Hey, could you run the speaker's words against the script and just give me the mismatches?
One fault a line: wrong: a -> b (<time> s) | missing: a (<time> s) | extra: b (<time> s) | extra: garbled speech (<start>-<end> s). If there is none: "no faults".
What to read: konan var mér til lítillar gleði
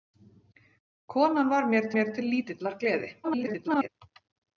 extra: mér (2.0 s)
extra: garbled speech (3.2-3.9 s)